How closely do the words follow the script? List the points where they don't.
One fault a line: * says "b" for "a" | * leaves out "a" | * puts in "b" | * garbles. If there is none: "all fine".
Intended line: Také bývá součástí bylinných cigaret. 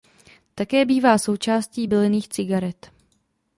all fine